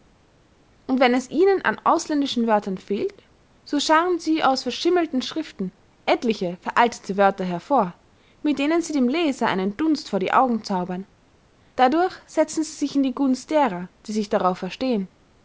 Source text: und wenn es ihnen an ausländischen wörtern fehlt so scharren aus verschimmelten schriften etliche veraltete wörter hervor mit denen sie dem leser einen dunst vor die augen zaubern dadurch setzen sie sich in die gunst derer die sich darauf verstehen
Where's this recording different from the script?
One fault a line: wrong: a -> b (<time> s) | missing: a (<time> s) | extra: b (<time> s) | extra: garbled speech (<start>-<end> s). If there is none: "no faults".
extra: sie (4.2 s)